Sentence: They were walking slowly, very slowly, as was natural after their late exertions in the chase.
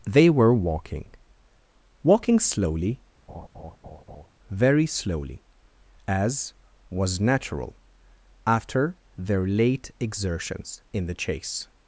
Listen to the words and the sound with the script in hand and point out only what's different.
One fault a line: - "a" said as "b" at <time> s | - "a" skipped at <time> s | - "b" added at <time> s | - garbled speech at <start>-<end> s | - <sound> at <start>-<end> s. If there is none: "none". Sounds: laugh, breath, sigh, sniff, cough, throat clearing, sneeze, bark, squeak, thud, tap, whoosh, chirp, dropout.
- "walking" added at 2.0 s
- laugh at 3.3-4.3 s